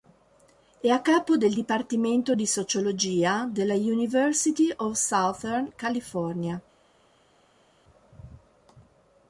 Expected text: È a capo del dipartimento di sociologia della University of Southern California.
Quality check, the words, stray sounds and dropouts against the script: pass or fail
pass